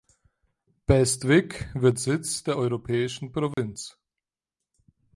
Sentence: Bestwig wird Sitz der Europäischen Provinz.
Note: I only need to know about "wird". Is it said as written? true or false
true